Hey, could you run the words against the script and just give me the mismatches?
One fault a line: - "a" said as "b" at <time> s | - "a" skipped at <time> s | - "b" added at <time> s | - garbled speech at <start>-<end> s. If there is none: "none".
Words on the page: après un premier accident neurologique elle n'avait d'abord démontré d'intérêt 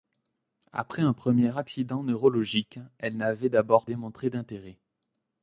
none